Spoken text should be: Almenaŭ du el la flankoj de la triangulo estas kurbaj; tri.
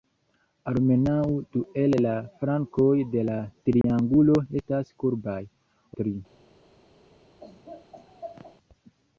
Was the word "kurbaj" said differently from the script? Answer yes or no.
no